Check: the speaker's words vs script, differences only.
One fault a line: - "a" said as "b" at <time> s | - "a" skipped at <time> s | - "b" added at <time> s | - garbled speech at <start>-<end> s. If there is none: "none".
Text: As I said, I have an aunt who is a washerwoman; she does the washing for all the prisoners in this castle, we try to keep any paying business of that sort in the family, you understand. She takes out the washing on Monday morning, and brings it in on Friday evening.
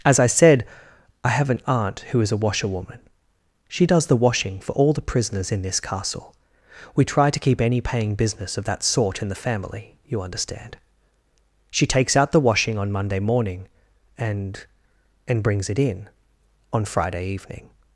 - "and" added at 15.3 s